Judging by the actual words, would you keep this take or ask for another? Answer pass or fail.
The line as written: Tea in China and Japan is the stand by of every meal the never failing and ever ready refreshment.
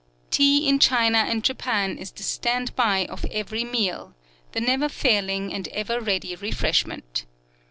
pass